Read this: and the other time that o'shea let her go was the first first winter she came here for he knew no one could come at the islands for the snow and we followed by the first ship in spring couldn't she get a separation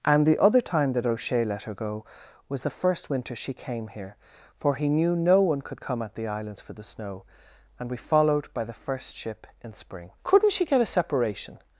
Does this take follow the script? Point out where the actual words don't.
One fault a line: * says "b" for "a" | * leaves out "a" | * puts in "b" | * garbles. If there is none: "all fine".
* leaves out "first"